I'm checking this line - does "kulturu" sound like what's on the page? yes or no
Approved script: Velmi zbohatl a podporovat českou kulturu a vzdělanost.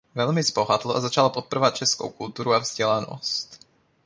yes